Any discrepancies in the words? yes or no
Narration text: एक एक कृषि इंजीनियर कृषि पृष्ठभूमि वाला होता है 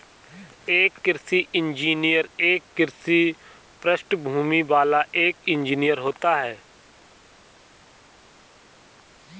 yes